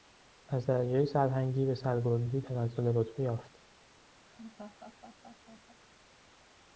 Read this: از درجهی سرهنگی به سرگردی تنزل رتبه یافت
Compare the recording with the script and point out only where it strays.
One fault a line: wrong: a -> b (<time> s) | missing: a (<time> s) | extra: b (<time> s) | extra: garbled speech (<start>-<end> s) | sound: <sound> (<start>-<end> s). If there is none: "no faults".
sound: laugh (4.2-5.8 s)